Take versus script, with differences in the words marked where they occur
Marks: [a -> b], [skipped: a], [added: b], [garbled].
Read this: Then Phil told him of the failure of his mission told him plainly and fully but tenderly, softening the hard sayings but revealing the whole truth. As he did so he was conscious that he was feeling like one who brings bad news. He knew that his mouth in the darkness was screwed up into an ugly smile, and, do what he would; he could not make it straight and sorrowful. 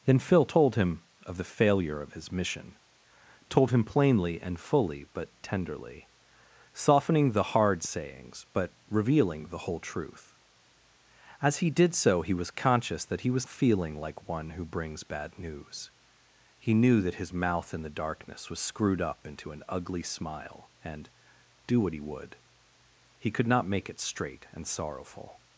Then Phil told him of the failure of his mission told him plainly and fully but tenderly, softening the hard sayings but revealing the whole truth. As he did so he was conscious that he was feeling like one who brings bad news. He knew that his mouth in the darkness was screwed up into an ugly smile, and, do what he would; he could not make it straight and sorrowful.